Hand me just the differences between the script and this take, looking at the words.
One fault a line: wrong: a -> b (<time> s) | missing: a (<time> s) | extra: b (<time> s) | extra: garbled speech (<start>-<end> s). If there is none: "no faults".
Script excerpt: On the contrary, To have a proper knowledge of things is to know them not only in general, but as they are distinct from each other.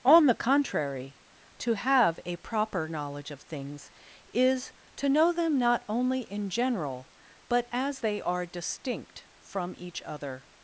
no faults